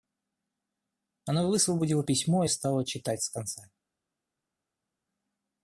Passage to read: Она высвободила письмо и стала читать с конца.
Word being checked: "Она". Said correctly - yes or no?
yes